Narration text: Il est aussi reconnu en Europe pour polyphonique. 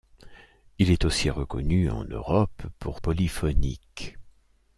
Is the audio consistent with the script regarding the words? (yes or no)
yes